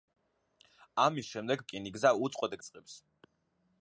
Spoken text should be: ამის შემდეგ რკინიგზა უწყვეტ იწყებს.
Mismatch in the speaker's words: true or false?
false